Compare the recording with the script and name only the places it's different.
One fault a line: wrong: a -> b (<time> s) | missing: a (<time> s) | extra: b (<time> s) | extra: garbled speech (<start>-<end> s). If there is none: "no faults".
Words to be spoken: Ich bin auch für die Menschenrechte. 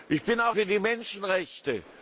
no faults